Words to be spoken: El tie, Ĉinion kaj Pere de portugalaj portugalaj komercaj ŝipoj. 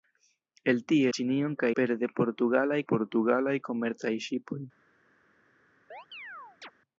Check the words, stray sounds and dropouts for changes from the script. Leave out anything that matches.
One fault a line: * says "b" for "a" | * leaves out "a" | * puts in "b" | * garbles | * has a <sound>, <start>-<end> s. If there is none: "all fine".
* has a chirp, 5.9-6.7 s